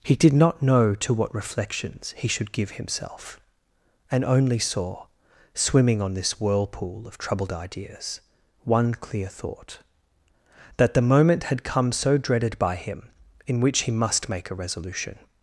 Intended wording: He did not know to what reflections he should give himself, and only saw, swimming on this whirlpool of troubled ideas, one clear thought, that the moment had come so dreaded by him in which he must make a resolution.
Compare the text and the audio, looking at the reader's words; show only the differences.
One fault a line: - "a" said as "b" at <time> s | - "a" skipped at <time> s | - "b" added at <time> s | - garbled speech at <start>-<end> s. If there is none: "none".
none